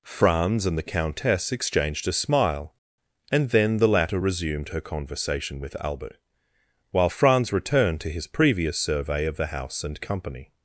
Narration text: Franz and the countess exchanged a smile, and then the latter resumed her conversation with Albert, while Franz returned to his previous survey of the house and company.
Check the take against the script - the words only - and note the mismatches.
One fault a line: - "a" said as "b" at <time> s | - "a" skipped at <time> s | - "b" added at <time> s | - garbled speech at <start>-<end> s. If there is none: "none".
none